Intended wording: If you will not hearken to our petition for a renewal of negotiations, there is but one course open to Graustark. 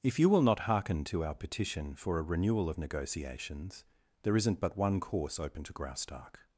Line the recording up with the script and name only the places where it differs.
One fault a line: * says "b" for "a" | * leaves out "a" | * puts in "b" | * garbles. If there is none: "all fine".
* says "isn't" for "is"